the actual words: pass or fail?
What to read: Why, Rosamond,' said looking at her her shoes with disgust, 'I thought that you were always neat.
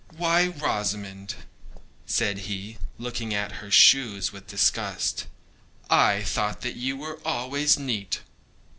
fail